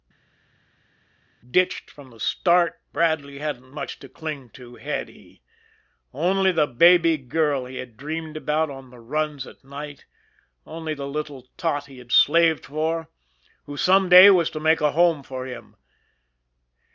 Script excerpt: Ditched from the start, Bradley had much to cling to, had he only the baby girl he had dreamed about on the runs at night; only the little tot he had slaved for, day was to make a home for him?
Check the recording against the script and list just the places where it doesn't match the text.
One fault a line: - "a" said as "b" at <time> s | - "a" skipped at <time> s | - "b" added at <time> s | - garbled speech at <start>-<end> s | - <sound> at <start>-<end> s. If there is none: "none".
- "had" said as "hadn't" at 3.4 s
- "who some" added at 13.7 s